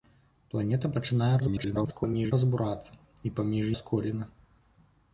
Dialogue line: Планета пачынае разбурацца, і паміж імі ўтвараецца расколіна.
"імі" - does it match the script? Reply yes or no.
no